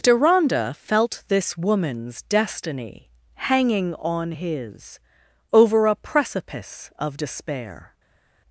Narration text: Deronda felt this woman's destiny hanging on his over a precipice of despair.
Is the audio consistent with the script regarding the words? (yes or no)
yes